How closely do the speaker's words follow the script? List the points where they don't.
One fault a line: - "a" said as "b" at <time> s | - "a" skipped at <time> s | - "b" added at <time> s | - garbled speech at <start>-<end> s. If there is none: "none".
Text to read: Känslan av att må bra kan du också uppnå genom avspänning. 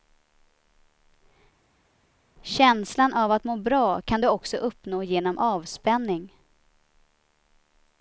none